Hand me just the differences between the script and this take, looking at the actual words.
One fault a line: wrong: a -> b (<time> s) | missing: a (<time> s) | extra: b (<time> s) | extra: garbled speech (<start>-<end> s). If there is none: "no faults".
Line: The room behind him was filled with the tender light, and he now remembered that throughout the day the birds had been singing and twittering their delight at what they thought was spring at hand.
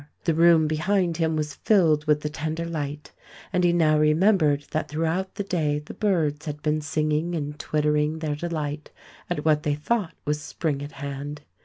no faults